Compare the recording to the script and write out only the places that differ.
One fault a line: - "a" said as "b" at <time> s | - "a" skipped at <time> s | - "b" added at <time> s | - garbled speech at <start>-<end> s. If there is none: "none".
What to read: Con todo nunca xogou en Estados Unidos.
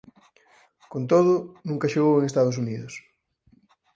none